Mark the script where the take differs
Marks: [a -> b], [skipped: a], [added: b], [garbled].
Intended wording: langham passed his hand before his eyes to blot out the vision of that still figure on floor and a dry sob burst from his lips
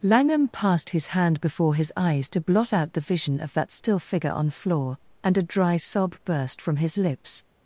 langham passed his hand before his eyes to blot out the vision of that still figure on floor and a dry sob burst from his lips